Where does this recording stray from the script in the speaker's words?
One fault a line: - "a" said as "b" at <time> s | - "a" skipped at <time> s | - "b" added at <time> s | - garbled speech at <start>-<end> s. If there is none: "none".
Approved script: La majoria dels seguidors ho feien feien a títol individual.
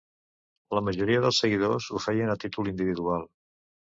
- "feien" skipped at 2.3 s